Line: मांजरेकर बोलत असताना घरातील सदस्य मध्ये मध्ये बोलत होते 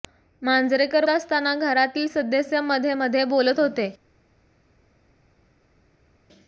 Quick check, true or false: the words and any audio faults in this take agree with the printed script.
false